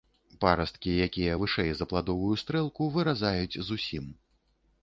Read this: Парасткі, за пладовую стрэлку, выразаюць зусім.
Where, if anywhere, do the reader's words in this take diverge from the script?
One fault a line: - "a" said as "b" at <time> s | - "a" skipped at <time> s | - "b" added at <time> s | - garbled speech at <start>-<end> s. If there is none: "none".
- "якія вышэй" added at 1.1 s